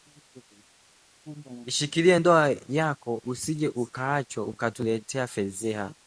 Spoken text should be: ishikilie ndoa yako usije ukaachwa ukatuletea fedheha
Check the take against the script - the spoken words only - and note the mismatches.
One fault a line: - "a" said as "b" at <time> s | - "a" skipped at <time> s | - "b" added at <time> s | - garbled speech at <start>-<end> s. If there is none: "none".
none